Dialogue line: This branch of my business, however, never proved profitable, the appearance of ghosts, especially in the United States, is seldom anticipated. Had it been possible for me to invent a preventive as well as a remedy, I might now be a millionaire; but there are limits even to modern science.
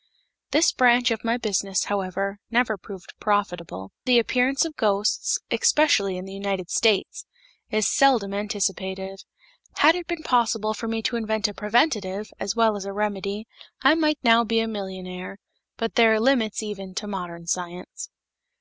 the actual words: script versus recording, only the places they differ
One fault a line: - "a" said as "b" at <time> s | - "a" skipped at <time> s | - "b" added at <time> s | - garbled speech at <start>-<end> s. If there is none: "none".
none